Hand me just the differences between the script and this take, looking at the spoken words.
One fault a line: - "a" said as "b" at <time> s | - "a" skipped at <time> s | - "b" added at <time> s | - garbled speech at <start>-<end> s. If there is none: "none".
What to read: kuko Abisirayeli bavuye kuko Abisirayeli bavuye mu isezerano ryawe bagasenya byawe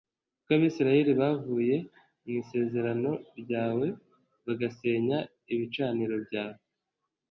- "kuko Abisirayeli bavuye" skipped at 1.8 s
- "ibicaniro" added at 5.5 s